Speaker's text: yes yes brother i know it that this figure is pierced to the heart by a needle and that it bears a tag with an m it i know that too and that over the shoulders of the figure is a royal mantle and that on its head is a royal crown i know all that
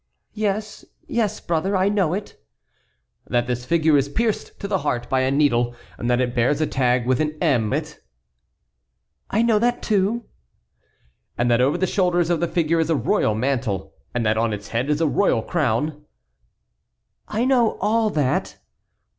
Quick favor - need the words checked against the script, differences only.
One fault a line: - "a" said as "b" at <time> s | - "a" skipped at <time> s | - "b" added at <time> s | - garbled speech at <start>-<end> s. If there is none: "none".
none